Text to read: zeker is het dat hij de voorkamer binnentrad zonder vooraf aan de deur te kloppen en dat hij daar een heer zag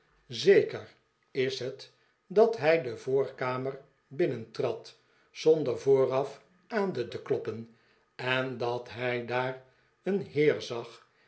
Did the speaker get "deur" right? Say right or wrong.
wrong